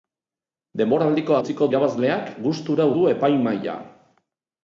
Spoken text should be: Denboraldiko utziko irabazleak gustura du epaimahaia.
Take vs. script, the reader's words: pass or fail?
pass